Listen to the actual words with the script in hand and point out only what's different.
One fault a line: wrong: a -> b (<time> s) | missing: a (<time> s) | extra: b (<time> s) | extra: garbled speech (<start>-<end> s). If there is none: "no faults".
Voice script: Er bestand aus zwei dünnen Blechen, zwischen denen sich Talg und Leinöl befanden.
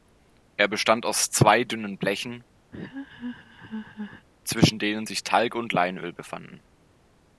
no faults